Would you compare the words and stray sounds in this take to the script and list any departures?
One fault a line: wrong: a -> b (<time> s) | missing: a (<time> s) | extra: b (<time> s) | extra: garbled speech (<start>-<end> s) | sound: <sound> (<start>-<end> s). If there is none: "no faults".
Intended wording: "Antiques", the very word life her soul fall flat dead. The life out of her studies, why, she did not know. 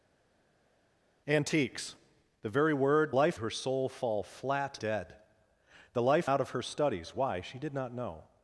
no faults